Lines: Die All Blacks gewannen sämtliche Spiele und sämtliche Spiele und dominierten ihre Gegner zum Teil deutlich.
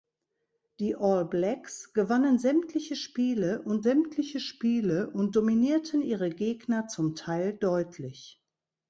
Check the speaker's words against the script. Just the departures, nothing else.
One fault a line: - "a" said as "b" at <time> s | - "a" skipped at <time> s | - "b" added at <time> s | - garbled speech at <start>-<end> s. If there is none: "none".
none